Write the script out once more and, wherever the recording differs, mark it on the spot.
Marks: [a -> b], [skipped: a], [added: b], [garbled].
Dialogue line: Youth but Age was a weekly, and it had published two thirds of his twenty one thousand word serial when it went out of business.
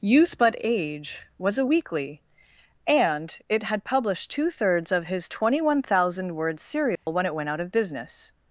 Youth but Age was a weekly, and it had published two thirds of his twenty one thousand word serial when it went out of business.